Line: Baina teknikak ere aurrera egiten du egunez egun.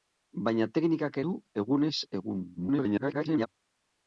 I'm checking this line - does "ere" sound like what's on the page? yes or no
no